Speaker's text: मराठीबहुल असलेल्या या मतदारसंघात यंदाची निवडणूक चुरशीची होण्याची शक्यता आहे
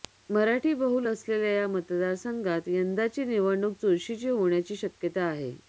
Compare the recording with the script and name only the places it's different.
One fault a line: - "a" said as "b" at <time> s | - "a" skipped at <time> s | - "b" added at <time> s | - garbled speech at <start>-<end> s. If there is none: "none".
none